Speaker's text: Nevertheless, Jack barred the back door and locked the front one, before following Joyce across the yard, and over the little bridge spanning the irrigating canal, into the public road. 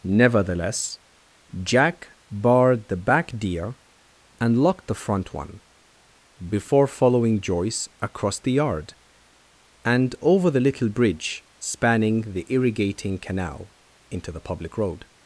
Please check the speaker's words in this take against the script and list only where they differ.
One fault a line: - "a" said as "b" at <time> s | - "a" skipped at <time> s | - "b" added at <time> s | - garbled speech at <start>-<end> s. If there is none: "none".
- "door" said as "deer" at 3.4 s